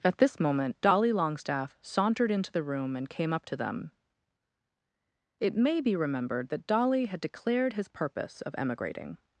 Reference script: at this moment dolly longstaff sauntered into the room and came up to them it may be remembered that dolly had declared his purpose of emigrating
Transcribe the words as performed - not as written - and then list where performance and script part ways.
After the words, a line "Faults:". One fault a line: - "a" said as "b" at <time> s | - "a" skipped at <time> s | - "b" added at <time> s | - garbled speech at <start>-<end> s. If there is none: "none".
at this moment dolly longstaff sauntered into the room and came up to them it may be remembered that dolly had declared his purpose of emigrating
Faults:
none